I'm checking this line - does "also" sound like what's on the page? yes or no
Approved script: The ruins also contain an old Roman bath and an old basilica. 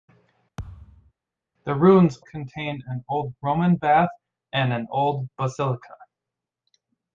no